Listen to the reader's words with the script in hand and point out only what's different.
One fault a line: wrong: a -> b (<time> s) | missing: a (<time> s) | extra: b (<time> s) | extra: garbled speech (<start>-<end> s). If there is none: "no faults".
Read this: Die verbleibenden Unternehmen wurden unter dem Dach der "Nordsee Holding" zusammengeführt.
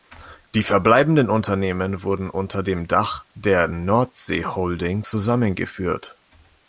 no faults